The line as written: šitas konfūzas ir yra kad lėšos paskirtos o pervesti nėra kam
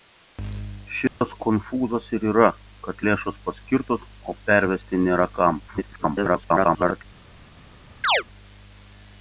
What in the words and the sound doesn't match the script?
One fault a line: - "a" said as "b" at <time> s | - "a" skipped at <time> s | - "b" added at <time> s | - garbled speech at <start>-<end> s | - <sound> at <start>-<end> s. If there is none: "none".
- dropout at 1.1-1.2 s
- garbled speech at 5.7-7.1 s
- chirp at 8.0-8.2 s